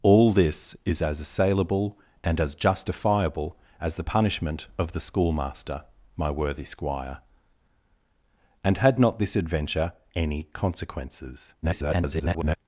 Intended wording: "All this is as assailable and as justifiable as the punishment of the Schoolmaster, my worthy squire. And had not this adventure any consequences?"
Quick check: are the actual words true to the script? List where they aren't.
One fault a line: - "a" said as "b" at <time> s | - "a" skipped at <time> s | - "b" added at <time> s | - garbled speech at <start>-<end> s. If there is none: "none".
- garbled speech at 11.6-12.6 s